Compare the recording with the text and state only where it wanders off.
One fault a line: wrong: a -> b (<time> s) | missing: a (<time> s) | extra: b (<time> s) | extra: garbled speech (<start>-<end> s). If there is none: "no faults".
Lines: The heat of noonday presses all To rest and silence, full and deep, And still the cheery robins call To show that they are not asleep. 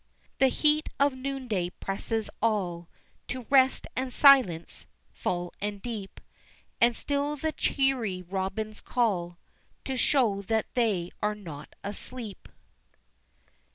no faults